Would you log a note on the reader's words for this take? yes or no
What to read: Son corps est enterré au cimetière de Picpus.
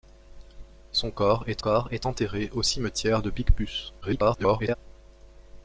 yes